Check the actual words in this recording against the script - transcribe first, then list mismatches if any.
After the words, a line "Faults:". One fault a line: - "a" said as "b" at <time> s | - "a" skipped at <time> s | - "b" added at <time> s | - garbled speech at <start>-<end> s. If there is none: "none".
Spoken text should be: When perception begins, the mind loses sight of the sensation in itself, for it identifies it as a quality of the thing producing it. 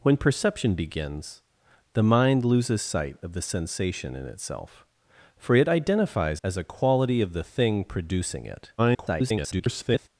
When perception begins, the mind loses sight of the sensation in itself, for it identifies as a quality of the thing producing it. [garbled]
Faults:
- "it" skipped at 6.4 s
- garbled speech at 8.8-10.1 s